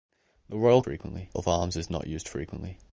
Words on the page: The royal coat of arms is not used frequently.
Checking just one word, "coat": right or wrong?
wrong